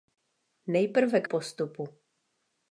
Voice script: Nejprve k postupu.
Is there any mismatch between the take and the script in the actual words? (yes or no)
no